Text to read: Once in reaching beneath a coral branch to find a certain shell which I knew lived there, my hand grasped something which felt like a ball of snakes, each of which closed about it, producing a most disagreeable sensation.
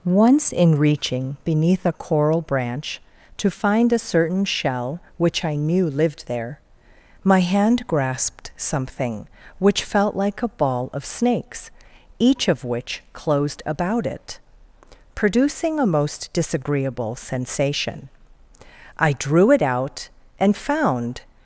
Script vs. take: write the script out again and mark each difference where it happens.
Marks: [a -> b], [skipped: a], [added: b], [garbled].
Once in reaching beneath a coral branch to find a certain shell which I knew lived there, my hand grasped something which felt like a ball of snakes, each of which closed about it, producing a most disagreeable sensation. [added: I drew it out and found]